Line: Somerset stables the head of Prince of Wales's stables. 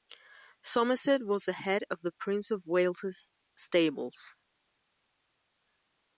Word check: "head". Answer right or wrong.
right